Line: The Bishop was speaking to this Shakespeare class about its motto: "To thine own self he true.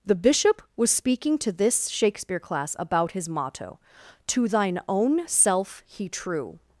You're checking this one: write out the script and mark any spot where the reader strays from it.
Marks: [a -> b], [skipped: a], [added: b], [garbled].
The Bishop was speaking to this Shakespeare class about [its -> his] motto: "To thine own self he true.